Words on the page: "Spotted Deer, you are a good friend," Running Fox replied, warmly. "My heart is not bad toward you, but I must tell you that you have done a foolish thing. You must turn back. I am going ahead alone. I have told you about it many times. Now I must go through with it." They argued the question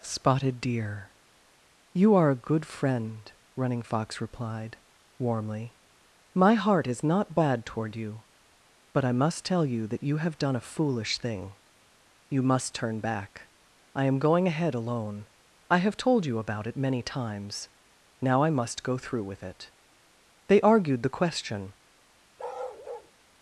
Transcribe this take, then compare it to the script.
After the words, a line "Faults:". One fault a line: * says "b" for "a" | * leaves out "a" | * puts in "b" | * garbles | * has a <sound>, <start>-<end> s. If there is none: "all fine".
"Spotted Deer, you are a good friend," Running Fox replied, warmly. "My heart is not bad toward you, but I must tell you that you have done a foolish thing. You must turn back. I am going ahead alone. I have told you about it many times. Now I must go through with it." They argued the question
Faults:
* has a bark, 22.4-23.1 s